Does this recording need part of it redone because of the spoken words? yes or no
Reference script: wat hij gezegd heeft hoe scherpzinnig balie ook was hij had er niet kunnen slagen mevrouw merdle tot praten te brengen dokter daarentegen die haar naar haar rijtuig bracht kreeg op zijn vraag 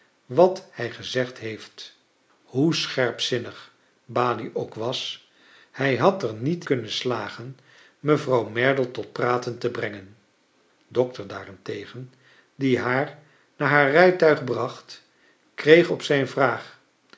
no